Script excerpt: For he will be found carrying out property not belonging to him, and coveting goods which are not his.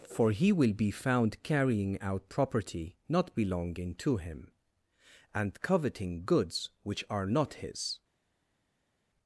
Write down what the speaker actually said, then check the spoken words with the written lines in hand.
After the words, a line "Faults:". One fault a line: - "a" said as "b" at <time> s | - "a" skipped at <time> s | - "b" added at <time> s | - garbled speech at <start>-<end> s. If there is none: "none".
For he will be found carrying out property not belonging to him, and coveting goods which are not his.
Faults:
none